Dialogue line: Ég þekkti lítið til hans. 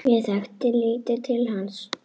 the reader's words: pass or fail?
pass